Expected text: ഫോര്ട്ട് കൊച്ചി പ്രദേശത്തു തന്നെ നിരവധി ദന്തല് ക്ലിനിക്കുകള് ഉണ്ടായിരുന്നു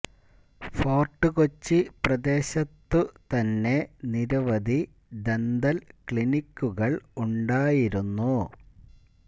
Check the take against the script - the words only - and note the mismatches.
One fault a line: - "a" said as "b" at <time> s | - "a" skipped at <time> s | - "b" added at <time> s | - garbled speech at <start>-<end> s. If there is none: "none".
none